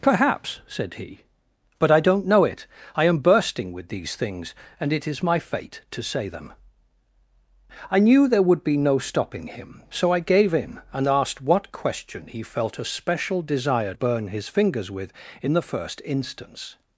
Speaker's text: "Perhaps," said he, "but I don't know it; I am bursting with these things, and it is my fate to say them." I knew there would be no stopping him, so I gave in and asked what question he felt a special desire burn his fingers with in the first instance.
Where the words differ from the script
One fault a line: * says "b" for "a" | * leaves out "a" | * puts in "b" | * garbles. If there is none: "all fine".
all fine